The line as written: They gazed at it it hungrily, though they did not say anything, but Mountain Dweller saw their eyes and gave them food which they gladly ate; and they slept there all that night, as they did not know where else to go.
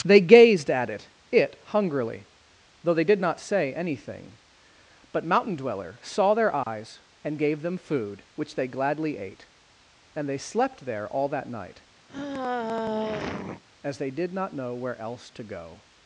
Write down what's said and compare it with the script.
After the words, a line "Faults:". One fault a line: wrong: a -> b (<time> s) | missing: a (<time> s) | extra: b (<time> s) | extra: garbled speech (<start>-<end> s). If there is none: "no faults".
They gazed at it it hungrily, though they did not say anything, but Mountain Dweller saw their eyes and gave them food which they gladly ate; and they slept there all that night, as they did not know where else to go.
Faults:
no faults